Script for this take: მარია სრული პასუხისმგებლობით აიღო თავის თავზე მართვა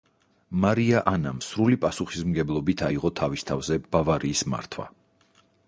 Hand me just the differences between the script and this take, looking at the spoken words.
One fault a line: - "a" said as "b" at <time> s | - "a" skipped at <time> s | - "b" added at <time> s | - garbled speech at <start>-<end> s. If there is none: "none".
- "ანამ" added at 1.1 s
- "ბავარიის" added at 4.0 s